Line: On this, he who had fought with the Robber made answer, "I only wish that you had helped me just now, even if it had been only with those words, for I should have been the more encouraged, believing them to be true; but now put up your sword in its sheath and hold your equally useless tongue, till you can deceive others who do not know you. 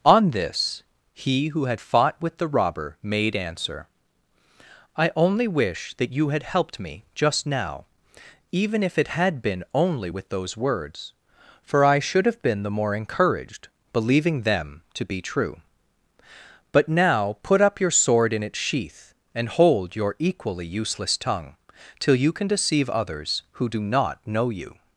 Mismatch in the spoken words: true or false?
false